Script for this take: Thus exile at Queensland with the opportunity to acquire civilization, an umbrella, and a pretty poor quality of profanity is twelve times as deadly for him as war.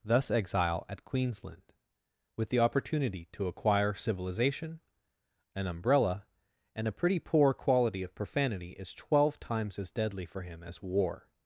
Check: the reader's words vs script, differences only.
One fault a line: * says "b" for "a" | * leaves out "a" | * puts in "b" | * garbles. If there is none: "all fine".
all fine